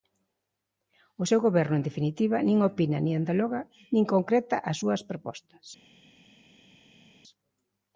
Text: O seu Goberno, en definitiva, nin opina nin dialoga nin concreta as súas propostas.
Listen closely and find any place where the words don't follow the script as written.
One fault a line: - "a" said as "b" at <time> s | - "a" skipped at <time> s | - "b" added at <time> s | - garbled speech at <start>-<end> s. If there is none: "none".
none